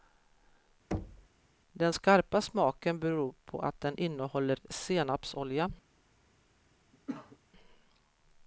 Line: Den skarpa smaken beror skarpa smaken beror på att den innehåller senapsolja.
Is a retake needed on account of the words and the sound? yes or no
yes